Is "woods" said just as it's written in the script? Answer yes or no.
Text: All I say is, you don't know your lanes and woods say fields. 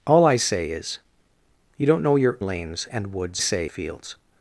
yes